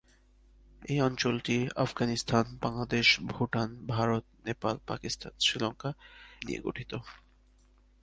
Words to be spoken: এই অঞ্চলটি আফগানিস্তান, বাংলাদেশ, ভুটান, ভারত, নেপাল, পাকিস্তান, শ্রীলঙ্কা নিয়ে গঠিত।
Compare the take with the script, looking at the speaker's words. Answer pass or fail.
pass